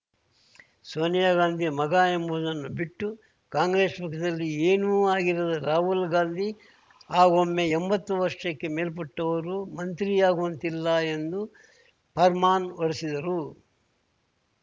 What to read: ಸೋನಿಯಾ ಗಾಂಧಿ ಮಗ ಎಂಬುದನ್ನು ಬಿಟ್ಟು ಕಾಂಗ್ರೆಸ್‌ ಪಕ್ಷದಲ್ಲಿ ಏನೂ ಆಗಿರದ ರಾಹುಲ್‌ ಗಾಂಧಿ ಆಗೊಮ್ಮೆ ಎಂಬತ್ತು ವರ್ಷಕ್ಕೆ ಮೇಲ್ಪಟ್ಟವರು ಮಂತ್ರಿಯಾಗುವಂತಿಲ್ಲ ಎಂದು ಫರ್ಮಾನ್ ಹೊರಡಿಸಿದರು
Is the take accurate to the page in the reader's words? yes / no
yes